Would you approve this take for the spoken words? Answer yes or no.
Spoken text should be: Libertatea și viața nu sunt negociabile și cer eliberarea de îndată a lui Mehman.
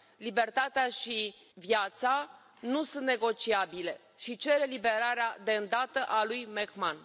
yes